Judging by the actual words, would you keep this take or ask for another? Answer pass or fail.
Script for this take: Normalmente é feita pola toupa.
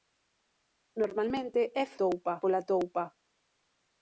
fail